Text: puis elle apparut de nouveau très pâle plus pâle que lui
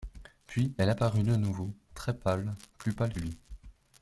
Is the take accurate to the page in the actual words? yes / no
no